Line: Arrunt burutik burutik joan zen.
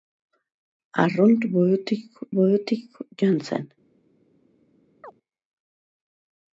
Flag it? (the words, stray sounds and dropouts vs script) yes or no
yes